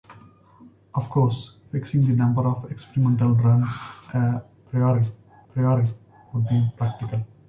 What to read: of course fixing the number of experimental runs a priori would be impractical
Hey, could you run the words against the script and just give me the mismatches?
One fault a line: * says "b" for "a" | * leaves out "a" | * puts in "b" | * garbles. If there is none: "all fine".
* puts in "priori"